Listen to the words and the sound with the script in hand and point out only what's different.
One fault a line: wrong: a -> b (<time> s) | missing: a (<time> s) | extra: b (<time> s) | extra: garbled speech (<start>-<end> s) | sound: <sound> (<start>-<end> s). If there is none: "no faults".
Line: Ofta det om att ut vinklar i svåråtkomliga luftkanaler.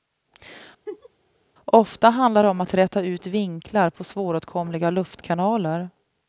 sound: laugh (0.9-1.1 s)
extra: handlar (2.1 s)
extra: räta (2.7 s)
wrong: i -> på (3.9 s)